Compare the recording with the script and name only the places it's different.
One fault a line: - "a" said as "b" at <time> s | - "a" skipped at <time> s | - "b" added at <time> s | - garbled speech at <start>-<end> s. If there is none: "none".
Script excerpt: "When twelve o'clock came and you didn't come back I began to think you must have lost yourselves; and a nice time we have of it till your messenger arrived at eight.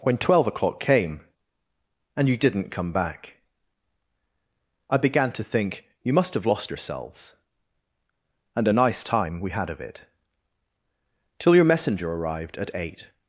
- "have" said as "had" at 9.5 s